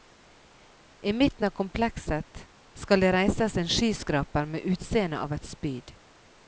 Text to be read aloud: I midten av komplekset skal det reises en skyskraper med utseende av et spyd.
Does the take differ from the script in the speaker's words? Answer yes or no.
no